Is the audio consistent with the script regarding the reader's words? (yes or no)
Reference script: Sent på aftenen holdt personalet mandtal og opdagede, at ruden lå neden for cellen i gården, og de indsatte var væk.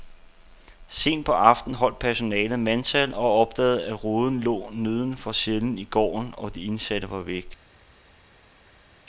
yes